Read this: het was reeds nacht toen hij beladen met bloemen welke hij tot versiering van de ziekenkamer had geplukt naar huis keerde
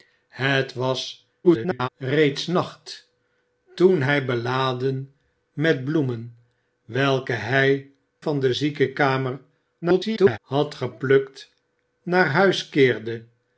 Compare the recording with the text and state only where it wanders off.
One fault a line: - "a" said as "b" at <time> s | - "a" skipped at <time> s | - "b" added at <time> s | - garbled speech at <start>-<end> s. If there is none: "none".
- garbled speech at 1.4-1.9 s
- "tot versiering" skipped at 7.9 s
- garbled speech at 9.8-10.4 s